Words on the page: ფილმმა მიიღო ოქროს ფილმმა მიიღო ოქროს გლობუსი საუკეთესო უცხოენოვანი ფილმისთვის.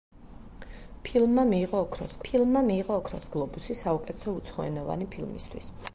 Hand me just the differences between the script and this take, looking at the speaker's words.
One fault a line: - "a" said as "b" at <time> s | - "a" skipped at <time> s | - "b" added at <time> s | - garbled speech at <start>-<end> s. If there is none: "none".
none